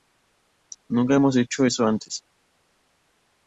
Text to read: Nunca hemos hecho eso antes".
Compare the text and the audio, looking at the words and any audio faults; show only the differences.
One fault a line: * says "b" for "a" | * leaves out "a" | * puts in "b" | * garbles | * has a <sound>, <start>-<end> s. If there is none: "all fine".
all fine